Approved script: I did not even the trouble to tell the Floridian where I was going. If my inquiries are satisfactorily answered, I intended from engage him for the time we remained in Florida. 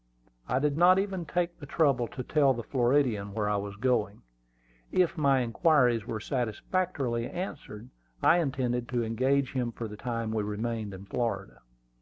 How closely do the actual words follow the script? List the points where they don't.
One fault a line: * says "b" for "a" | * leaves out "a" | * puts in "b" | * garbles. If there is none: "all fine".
* puts in "take"
* says "were" for "are"
* says "to" for "from"